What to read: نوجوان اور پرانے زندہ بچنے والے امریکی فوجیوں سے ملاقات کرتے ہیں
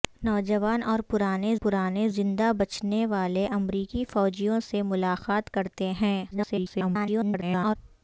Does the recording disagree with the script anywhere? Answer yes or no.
yes